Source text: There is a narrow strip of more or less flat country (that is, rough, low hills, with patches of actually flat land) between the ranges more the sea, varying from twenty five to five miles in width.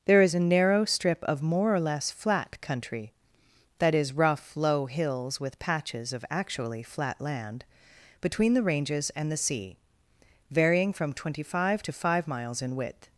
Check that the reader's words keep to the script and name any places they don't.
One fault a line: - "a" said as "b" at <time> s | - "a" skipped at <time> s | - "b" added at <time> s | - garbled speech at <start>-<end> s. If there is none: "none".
- "more" said as "and" at 9.1 s